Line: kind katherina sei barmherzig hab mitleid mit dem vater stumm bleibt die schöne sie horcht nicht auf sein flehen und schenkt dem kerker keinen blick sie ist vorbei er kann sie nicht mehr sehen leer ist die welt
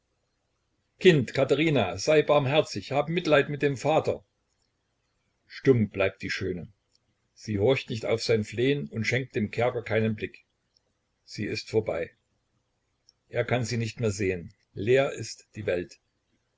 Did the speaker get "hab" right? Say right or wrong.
right